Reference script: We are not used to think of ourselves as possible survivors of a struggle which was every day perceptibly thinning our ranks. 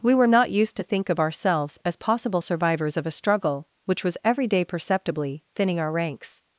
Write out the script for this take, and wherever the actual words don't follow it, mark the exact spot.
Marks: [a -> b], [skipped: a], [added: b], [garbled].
We [are -> were] not used to think of ourselves as possible survivors of a struggle which was every day perceptibly thinning our ranks.